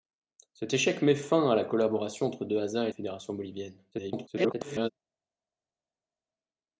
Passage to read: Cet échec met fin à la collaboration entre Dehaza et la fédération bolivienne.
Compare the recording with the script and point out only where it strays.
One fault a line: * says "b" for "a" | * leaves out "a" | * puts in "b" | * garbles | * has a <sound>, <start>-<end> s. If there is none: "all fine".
* leaves out "la"
* garbles